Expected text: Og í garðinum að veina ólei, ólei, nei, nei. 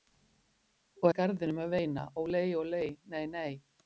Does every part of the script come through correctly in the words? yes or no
yes